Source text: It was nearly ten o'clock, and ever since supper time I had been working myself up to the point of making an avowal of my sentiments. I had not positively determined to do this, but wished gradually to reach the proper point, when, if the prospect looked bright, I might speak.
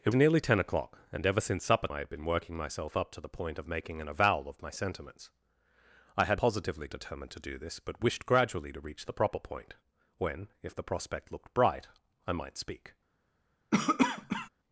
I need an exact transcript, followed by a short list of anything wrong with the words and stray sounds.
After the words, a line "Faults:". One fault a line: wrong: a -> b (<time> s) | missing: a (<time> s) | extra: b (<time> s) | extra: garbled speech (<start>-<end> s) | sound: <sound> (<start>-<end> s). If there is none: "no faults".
It nearly ten o'clock, and ever since supper I had been working myself up to the point of making an avowal of my sentiments. I had positively determined to do this, but wished gradually to reach the proper point, when, if the prospect looked bright, I might speak.
Faults:
missing: was (0.1 s)
missing: time (1.9 s)
missing: not (6.4 s)
sound: cough (13.7-14.5 s)